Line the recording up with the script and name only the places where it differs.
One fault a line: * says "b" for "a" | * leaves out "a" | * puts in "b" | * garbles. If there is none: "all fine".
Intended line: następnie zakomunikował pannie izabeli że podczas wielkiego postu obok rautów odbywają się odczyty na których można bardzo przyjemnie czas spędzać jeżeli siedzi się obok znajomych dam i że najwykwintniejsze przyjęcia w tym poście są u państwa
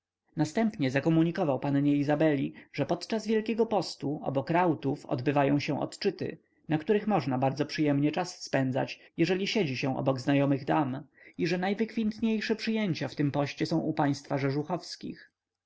all fine